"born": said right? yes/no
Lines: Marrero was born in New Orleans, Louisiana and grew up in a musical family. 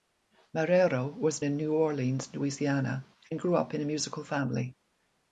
no